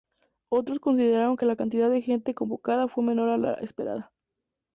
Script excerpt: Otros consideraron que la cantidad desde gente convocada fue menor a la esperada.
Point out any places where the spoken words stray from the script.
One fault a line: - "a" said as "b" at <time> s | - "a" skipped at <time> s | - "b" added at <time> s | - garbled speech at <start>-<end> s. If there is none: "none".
- "desde" said as "de" at 1.9 s